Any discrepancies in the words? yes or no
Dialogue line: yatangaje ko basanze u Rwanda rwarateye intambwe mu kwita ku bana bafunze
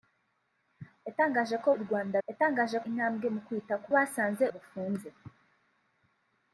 yes